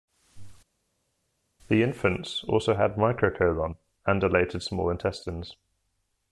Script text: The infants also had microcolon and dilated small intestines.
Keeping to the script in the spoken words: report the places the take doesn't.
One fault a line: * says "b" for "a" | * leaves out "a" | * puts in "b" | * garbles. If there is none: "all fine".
all fine